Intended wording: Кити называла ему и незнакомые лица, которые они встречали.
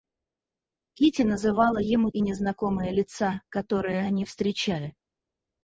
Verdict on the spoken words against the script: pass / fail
pass